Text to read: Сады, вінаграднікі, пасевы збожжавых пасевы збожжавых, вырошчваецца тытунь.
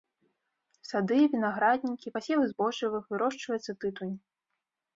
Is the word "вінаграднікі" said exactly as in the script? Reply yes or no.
yes